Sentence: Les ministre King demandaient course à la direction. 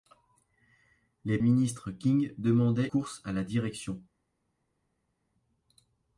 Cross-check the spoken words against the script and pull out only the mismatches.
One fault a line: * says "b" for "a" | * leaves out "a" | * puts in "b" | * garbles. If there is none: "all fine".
all fine